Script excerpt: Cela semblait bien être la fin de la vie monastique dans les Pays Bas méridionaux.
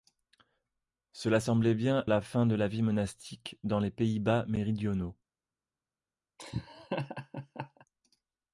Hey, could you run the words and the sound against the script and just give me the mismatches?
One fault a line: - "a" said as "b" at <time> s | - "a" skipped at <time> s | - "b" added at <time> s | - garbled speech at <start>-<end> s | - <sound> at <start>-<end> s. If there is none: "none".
- "être" skipped at 2.1 s
- laugh at 6.4-7.9 s